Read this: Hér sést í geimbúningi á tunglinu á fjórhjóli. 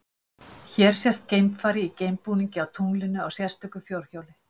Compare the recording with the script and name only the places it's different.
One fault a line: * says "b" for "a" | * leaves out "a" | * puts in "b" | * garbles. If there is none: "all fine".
* puts in "geimfari"
* puts in "sérstöku"